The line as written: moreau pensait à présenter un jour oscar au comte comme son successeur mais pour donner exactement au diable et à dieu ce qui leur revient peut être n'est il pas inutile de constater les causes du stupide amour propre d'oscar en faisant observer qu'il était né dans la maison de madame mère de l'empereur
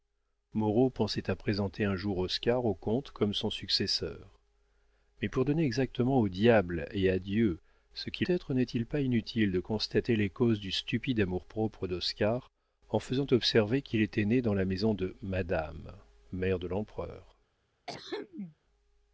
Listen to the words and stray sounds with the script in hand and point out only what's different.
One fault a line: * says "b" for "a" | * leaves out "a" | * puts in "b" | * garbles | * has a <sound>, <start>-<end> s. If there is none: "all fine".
* leaves out "leur revient peut"
* has a throat clearing, 17.9-18.6 s